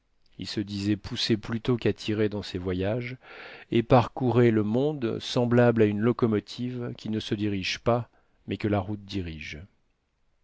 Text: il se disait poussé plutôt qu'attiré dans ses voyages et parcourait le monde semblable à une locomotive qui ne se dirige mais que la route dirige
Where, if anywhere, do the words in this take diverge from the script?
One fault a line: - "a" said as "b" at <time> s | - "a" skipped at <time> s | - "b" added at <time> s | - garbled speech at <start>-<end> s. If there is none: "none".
- "pas" added at 7.8 s